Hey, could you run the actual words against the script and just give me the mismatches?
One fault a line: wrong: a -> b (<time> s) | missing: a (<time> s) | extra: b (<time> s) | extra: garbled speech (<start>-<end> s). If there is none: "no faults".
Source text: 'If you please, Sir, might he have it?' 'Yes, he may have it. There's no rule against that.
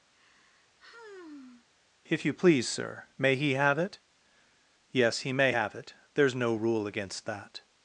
wrong: might -> may (3.2 s)